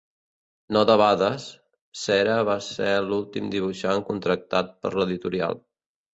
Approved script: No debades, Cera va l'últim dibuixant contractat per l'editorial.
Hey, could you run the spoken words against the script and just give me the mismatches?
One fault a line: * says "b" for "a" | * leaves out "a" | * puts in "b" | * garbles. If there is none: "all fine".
* puts in "ser"